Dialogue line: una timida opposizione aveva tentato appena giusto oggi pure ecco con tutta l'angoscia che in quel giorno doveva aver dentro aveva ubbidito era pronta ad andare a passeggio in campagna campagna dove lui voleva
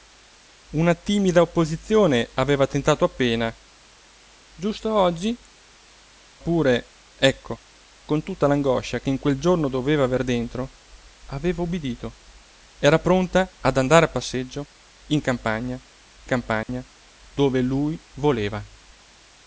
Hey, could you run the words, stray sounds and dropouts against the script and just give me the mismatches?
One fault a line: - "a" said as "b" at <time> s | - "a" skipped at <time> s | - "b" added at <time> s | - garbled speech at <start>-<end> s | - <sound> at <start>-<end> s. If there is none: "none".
- dropout at 16.6-16.7 s